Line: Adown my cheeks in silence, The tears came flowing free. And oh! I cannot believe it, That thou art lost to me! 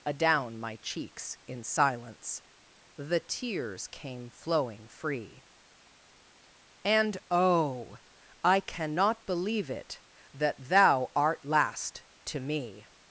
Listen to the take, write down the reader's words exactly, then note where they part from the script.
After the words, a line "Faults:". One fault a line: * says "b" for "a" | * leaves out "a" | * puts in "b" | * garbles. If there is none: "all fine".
Adown my cheeks in silence, The tears came flowing free. And oh! I cannot believe it, That thou art last to me!
Faults:
* says "last" for "lost"